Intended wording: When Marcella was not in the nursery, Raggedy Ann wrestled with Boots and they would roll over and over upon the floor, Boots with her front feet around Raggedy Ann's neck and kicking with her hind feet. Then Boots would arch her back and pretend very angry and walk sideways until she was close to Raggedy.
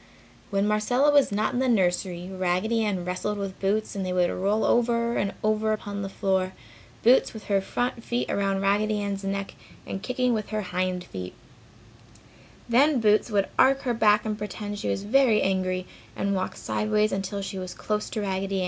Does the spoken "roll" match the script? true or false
true